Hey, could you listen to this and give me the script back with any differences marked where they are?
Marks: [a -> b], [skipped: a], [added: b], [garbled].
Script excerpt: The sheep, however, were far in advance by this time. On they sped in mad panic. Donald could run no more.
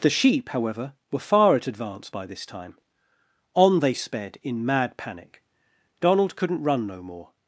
The sheep, however, were far [in -> at] advance by this time. On they sped in mad panic. Donald [could -> couldn't] run no more.